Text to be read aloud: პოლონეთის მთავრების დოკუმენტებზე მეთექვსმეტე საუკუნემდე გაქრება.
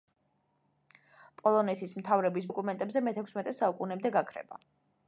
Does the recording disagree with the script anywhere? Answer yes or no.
no